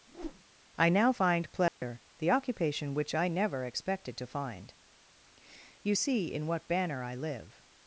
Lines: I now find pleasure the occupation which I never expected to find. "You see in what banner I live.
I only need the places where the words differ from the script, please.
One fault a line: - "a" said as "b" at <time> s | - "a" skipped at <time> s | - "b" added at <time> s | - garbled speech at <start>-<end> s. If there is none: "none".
none